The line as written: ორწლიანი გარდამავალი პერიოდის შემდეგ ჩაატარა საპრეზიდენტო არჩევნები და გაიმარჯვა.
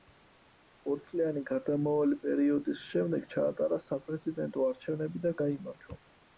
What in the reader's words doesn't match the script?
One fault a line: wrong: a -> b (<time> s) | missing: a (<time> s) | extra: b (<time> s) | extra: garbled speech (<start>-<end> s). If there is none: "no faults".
no faults